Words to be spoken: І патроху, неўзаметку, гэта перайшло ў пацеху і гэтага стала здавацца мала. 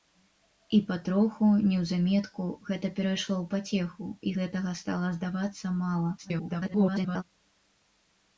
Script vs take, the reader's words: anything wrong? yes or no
yes